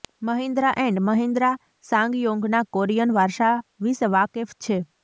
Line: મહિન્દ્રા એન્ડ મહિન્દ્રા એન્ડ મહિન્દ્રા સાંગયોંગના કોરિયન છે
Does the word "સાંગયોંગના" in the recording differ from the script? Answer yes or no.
yes